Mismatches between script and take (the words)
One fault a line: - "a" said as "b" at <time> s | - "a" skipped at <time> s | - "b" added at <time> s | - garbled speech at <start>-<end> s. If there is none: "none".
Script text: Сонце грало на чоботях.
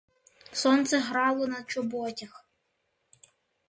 none